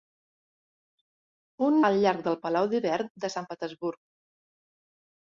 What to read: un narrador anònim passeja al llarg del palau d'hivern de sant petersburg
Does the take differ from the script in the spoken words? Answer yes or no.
yes